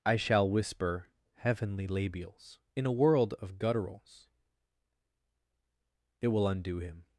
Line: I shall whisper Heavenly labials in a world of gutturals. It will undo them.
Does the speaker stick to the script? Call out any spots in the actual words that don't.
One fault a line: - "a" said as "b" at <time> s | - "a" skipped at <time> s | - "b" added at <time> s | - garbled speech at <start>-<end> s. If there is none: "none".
- "them" said as "him" at 6.8 s